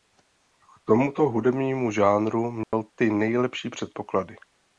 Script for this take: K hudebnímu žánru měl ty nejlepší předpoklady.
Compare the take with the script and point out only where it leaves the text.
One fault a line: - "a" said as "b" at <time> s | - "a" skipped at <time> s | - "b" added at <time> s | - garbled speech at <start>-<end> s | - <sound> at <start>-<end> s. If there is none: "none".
- "tomuto" added at 0.8 s
- dropout at 2.6-2.7 s